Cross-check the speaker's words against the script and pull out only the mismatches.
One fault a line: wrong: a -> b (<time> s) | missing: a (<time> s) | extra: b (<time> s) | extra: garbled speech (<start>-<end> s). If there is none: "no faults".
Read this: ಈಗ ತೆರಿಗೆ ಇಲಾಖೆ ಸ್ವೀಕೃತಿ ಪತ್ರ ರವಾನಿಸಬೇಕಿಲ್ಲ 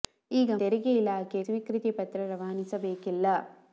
no faults